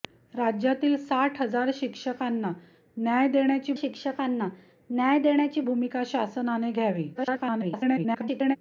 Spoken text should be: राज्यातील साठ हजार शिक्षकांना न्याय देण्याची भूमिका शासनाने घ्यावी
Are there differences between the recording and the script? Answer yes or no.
yes